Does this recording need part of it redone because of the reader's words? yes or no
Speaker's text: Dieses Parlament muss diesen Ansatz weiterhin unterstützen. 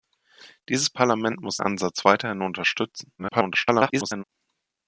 yes